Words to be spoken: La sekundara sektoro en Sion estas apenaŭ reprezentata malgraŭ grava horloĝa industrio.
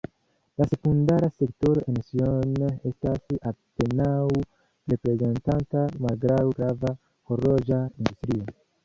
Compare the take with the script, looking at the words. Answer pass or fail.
pass